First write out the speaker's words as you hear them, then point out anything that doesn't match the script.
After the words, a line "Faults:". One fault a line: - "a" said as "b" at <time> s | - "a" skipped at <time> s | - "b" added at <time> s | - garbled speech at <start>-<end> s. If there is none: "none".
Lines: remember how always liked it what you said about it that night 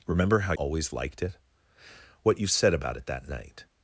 remember how always liked it what you said about it that night
Faults:
none